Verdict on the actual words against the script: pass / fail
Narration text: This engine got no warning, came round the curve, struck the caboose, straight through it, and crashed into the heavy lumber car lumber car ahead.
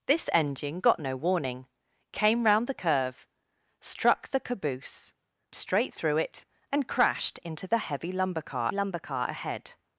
pass